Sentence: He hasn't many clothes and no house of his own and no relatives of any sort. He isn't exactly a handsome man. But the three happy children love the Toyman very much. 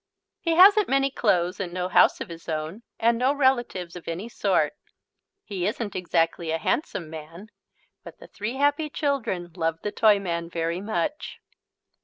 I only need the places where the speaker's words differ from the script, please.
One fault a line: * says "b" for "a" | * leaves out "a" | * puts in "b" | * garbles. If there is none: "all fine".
all fine